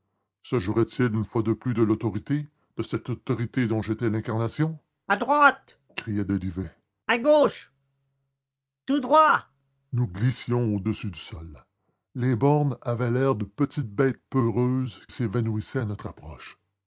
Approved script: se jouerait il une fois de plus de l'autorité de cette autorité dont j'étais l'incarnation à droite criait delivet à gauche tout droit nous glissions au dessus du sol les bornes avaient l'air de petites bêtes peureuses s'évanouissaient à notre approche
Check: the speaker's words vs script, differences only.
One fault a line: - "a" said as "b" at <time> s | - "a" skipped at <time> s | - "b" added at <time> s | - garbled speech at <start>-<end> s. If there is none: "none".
none